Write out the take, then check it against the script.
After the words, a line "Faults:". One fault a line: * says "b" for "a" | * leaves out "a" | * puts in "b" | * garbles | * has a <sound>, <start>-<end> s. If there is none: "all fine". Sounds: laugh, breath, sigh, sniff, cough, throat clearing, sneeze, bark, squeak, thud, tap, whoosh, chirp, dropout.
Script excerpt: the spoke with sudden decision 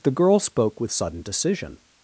the girl spoke with sudden decision
Faults:
* puts in "girl"